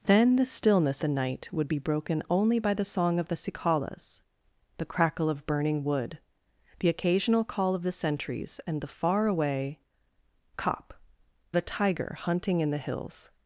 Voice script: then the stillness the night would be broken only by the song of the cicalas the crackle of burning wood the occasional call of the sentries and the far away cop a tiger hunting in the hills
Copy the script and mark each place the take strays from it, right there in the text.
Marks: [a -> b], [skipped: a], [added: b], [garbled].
then the stillness the night would be broken only by the song of the cicalas the crackle of burning wood the occasional call of the sentries and the far away cop a tiger hunting in the hills